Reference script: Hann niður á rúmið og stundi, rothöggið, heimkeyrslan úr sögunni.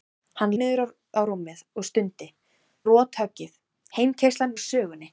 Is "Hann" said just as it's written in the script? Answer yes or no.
yes